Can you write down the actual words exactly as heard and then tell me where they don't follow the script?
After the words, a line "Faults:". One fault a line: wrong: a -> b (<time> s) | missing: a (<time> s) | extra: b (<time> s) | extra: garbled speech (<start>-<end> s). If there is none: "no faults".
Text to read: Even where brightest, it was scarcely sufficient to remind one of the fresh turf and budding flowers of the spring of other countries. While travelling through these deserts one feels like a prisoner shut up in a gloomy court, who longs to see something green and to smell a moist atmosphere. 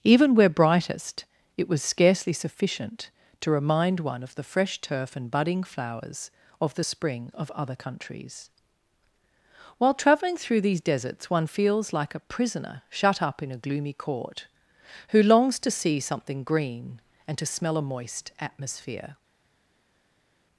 Even where brightest, it was scarcely sufficient to remind one of the fresh turf and budding flowers of the spring of other countries. While travelling through these deserts one feels like a prisoner shut up in a gloomy court, who longs to see something green and to smell a moist atmosphere.
Faults:
no faults